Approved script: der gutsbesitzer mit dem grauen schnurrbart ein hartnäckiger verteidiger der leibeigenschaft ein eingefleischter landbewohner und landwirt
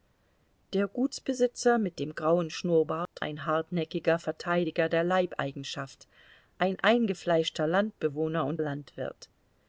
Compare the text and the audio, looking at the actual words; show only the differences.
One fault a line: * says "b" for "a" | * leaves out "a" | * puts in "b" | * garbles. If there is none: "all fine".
all fine